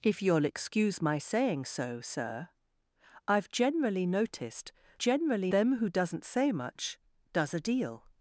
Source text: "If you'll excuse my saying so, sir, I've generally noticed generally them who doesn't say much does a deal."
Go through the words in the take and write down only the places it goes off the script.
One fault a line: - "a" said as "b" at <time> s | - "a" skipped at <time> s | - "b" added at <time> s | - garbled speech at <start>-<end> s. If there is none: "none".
none